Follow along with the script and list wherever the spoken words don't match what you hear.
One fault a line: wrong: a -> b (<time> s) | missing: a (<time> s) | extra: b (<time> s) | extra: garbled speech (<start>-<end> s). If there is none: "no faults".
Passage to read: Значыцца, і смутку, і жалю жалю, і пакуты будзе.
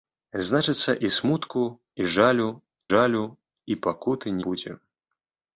no faults